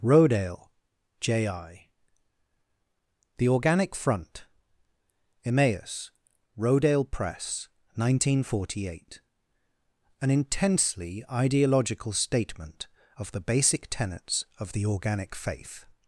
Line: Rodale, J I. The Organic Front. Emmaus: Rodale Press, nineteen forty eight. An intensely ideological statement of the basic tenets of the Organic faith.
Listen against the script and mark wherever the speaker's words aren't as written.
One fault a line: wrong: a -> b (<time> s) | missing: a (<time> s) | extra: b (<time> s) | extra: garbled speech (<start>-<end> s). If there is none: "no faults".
no faults